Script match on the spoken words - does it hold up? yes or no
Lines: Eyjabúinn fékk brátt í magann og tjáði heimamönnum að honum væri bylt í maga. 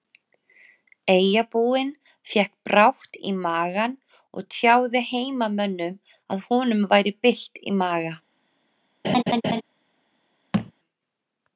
yes